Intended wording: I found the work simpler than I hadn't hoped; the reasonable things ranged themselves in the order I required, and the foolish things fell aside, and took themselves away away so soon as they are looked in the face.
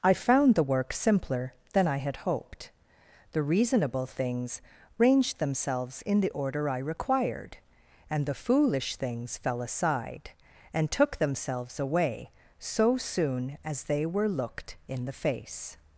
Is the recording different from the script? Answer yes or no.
yes